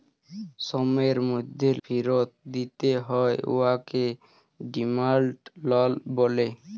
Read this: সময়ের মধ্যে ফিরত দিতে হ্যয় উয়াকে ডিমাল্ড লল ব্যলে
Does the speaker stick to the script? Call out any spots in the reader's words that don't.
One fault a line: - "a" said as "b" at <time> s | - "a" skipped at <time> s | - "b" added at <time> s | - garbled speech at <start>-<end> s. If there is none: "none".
none